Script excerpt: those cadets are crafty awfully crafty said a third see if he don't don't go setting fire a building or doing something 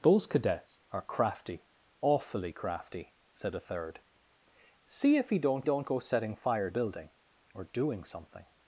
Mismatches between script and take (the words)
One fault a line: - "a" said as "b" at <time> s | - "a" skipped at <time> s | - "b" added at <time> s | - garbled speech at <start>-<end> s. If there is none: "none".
none